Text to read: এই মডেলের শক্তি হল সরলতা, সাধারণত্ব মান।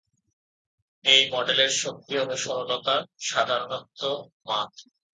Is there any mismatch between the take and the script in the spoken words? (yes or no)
no